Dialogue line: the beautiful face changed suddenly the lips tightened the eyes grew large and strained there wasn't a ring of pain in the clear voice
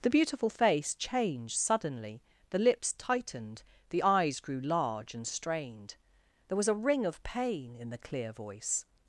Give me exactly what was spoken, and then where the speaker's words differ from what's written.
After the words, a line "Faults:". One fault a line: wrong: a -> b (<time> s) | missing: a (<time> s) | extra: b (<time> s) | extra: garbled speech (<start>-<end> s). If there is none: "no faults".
the beautiful face changed suddenly the lips tightened the eyes grew large and strained there was a ring of pain in the clear voice
Faults:
wrong: wasn't -> was (6.6 s)